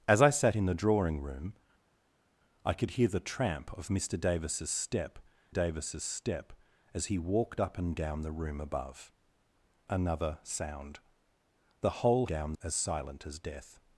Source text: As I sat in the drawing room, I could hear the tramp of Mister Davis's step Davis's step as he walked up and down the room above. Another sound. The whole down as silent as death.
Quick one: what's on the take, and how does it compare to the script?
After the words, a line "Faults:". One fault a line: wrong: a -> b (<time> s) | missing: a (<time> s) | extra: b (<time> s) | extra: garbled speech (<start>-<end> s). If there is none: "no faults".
As I sat in the drawing room, I could hear the tramp of Mister Davis's step Davis's step as he walked up and down the room above. Another sound. The whole down as silent as death.
Faults:
no faults